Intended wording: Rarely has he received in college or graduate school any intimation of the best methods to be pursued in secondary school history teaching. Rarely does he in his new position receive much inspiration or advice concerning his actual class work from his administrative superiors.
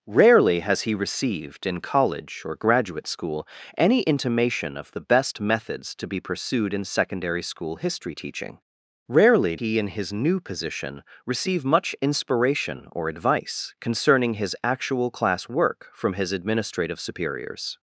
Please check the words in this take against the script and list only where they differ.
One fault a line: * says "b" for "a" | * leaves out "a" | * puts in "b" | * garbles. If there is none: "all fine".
* leaves out "does"